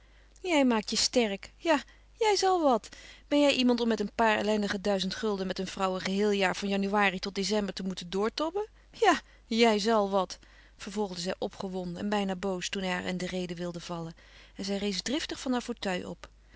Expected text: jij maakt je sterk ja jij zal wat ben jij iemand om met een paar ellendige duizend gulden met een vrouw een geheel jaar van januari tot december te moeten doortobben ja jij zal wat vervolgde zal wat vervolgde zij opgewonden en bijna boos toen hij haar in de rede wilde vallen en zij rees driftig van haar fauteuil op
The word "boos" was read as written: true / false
true